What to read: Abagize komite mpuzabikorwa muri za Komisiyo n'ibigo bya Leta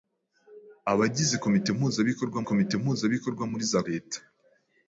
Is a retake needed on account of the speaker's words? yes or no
yes